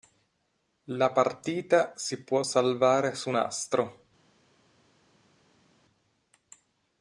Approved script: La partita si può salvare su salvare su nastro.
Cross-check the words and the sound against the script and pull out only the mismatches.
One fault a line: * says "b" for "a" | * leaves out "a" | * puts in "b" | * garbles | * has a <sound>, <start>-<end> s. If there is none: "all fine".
* leaves out "salvare su"